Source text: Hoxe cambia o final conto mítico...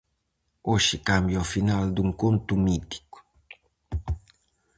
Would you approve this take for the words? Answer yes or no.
no